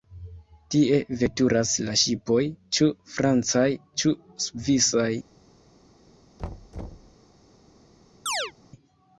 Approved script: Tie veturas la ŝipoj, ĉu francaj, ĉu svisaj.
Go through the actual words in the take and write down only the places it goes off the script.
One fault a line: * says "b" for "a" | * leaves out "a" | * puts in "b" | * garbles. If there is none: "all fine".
all fine